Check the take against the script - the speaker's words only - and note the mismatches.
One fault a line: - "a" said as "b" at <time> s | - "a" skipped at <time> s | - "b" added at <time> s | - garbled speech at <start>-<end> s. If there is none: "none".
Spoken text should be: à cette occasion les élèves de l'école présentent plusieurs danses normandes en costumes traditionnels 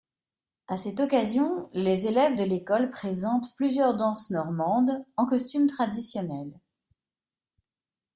none